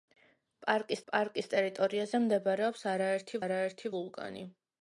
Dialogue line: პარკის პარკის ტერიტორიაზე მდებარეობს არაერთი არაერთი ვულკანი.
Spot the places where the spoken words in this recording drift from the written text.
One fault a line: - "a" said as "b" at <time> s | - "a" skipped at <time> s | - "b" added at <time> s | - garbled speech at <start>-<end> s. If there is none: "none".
none